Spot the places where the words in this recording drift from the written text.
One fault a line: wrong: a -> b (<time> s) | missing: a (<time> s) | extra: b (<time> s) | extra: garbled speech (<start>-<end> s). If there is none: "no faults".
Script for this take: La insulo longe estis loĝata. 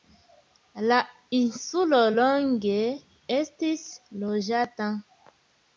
no faults